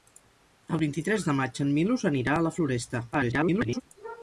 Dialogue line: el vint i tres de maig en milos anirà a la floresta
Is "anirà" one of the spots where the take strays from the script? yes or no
no